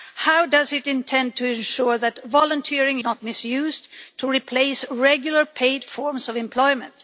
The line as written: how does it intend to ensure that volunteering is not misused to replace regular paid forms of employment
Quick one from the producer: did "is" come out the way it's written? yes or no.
no